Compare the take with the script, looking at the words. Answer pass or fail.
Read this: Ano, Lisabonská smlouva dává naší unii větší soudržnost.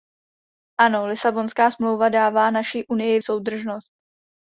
fail